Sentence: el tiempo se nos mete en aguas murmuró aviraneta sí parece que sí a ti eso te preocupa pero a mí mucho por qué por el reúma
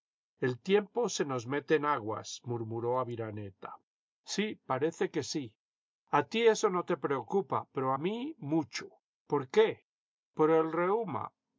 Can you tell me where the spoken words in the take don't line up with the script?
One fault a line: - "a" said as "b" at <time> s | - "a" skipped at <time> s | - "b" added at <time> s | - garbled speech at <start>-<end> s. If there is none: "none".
- "no" added at 6.7 s